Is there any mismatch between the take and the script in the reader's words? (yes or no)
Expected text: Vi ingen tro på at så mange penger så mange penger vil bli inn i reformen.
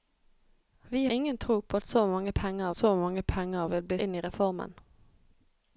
no